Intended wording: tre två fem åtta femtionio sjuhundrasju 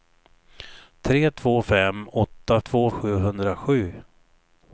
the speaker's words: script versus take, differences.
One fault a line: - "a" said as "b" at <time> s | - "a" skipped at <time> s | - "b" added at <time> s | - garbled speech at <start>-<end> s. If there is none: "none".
- "femtionio" said as "två" at 2.6 s